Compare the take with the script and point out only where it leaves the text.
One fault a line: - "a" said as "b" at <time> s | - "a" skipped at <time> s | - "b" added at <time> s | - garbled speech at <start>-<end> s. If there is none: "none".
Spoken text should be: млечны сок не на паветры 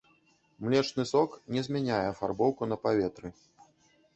- "змяняе афарбоўку" added at 1.7 s